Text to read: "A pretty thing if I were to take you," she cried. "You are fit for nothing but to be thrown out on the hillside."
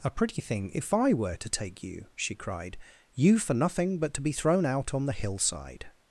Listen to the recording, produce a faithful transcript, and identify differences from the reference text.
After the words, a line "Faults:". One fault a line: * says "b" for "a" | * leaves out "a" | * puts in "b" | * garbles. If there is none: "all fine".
"A pretty thing if I were to take you," she cried. "You for nothing but to be thrown out on the hillside."
Faults:
* leaves out "are fit"